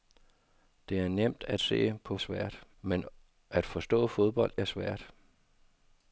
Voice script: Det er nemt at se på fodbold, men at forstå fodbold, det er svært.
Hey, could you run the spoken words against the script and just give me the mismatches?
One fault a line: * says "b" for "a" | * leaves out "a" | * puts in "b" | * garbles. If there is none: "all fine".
* says "svært" for "fodbold"
* leaves out "det"